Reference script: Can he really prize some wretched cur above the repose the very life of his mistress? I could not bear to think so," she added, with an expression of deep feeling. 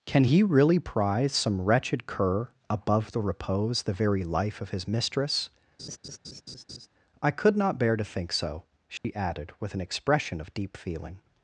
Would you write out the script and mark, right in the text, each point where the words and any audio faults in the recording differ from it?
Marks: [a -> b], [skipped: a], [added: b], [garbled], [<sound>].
Can he really prize some wretched cur above the repose the very life of his mistress? [laugh] I could not bear to think so," she [dropout] added, with an expression of deep feeling.